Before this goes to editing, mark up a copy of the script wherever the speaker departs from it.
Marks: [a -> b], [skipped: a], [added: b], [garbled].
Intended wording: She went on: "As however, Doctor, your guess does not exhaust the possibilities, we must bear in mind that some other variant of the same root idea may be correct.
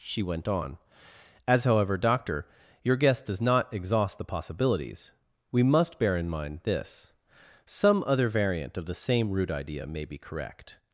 She went on: "As however, Doctor, your guess does not exhaust the possibilities, we must bear in mind [that -> this] some other variant of the same root idea may be correct.